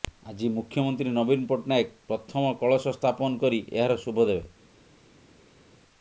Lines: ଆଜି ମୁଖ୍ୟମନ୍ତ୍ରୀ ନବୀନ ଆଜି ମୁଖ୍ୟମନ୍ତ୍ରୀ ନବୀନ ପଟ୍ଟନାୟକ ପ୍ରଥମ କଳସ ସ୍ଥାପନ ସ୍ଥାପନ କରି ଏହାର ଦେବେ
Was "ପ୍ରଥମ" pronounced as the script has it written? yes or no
yes